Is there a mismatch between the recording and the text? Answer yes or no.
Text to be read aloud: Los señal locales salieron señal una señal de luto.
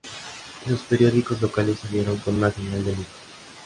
yes